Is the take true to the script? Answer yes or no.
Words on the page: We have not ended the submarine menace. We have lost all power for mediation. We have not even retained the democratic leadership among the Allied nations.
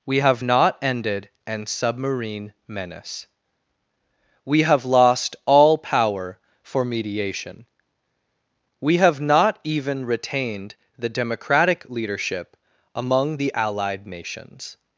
no